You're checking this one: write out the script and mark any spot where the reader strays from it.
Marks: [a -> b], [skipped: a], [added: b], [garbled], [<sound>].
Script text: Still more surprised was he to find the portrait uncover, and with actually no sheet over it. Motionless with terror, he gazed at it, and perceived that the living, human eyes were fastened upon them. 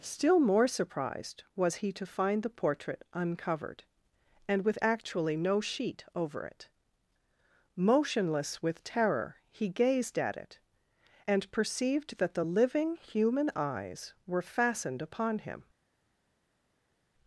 Still more surprised was he to find the portrait [uncover, -> uncovered] and with actually no sheet over it. Motionless with terror, he gazed at it, and perceived that the living, human eyes were fastened upon [them. -> him]